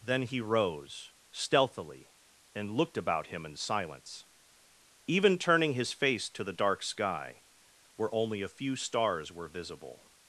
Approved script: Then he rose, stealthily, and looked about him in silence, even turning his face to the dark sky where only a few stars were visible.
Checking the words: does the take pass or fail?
pass